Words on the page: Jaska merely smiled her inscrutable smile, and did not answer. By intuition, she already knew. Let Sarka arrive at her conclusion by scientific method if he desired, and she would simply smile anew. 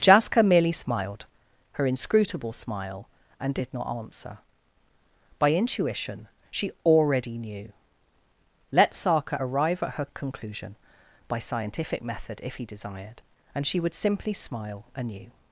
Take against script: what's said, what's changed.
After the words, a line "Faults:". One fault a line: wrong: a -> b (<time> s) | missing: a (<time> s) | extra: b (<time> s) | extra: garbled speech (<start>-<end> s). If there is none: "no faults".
Jaska merely smiled her inscrutable smile, and did not answer. By intuition, she already knew. Let Sarka arrive at her conclusion by scientific method if he desired, and she would simply smile anew.
Faults:
no faults